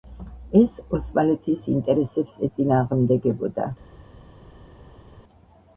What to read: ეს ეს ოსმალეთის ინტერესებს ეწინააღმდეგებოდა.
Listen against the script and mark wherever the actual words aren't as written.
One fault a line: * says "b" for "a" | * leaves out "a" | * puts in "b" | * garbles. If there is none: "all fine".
* leaves out "ეს"